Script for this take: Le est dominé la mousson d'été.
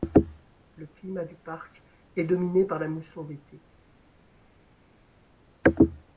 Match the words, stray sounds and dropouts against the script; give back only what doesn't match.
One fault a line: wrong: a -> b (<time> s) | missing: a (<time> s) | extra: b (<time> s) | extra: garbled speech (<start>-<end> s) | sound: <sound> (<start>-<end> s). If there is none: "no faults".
extra: climat du parc (0.9 s)
extra: par (2.6 s)